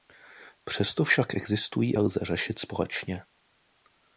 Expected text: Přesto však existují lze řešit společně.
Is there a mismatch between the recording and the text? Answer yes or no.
no